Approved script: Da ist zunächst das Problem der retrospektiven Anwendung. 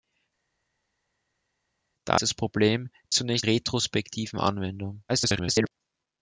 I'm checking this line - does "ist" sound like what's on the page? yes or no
no